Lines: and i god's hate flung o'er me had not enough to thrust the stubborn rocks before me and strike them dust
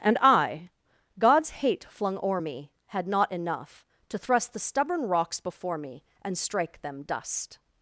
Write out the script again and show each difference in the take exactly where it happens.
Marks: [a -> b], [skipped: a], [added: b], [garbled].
and i god's hate flung o'er me had not enough to thrust the stubborn rocks before me and strike them dust